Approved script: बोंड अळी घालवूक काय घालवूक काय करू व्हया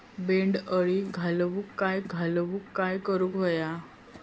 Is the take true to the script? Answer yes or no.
yes